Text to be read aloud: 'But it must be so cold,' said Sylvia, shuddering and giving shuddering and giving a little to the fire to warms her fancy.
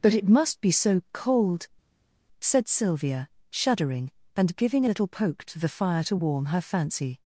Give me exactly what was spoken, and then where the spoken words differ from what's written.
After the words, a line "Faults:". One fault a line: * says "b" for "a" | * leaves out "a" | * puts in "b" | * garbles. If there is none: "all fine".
'But it must be so cold,' said Sylvia, shuddering and giving a little poke to the fire to warm her fancy.
Faults:
* leaves out "shuddering and giving"
* puts in "poke"
* says "warm" for "warms"